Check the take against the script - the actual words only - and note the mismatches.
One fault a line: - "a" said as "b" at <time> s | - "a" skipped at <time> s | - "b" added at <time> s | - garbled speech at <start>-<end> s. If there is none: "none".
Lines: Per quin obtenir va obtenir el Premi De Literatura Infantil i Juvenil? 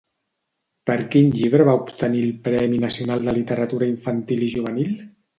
- "obtenir" said as "llibre" at 1.4 s
- "Nacional" added at 2.9 s